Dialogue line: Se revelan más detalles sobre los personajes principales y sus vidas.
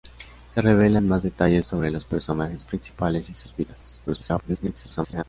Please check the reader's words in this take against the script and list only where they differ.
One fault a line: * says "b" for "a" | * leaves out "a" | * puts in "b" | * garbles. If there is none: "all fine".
* garbles